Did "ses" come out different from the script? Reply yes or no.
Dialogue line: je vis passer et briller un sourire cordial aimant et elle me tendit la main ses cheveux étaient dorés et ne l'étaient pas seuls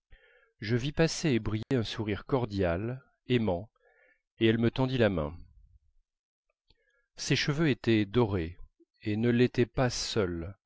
no